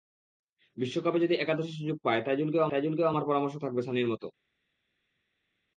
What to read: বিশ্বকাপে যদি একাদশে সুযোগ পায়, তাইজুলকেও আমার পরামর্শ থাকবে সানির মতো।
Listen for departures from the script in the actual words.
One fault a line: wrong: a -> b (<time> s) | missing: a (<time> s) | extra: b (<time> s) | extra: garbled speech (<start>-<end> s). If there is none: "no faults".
extra: তাইজুলকেও (2.7 s)